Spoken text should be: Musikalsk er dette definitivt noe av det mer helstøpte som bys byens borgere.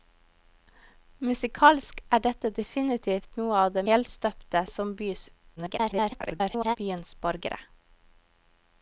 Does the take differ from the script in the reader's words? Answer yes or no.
yes